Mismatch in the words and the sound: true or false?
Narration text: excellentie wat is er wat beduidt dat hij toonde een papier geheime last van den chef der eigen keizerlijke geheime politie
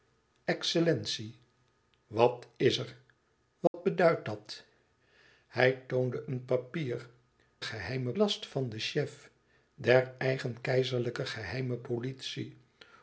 true